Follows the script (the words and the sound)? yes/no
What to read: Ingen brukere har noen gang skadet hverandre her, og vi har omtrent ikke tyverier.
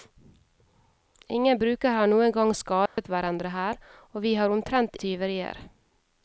no